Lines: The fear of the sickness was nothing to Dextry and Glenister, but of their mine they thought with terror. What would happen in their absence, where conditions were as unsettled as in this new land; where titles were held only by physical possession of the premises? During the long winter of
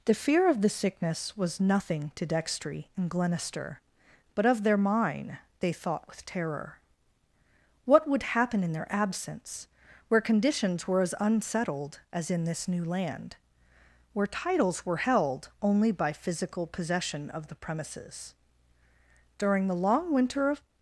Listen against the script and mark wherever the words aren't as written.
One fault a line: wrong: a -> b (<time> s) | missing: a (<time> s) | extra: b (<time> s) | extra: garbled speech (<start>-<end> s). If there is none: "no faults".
no faults